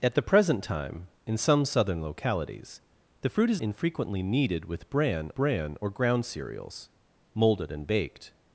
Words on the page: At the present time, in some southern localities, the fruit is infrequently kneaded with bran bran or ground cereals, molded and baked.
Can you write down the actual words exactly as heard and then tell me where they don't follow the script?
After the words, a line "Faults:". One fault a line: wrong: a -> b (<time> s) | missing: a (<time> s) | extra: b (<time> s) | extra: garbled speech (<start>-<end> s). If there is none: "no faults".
At the present time, in some southern localities, the fruit is infrequently kneaded with bran bran or ground cereals, molded and baked.
Faults:
no faults